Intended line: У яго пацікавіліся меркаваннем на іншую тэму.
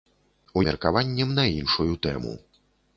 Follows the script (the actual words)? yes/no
no